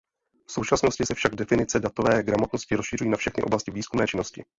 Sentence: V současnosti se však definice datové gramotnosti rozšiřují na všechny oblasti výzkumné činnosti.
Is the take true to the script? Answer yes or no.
yes